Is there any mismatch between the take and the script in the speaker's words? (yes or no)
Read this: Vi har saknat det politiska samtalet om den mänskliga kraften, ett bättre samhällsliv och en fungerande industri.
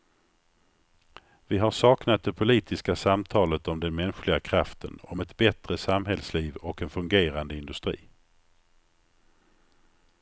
yes